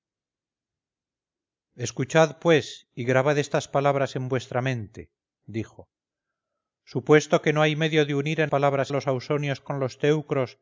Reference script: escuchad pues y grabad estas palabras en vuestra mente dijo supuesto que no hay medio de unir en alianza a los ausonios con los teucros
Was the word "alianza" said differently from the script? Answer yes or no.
yes